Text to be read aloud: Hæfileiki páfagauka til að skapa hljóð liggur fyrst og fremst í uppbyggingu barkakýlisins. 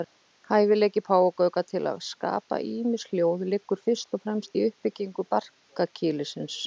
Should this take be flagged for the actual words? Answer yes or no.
yes